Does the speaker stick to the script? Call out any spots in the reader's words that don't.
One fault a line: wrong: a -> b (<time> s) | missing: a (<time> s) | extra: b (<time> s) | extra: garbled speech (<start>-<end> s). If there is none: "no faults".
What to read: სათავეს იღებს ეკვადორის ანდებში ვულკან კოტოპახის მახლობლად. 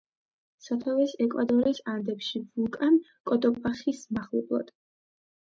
missing: იღებს (1.1 s)